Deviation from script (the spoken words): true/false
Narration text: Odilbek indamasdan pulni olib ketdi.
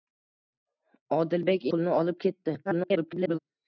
true